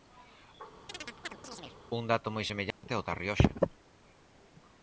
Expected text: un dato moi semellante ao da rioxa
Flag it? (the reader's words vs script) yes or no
no